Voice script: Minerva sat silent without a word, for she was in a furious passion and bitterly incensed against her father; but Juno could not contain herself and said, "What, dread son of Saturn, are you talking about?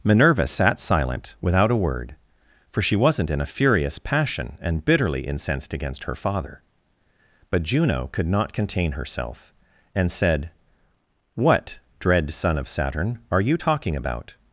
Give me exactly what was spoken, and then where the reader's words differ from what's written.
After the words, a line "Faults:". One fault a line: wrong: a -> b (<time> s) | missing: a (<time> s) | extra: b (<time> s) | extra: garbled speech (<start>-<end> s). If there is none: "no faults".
Minerva sat silent without a word, for she wasn't in a furious passion and bitterly incensed against her father; but Juno could not contain herself and said, "What, dread son of Saturn, are you talking about?
Faults:
wrong: was -> wasn't (3.0 s)